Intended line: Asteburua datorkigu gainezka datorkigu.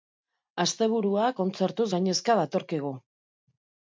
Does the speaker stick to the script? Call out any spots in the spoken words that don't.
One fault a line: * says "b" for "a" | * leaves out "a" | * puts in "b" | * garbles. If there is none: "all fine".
* says "kontzertuz" for "datorkigu"